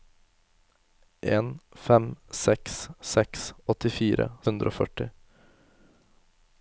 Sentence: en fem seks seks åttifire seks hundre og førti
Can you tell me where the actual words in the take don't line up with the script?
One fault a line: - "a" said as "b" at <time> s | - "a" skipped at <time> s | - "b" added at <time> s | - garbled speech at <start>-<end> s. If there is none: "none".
- "seks" skipped at 4.3 s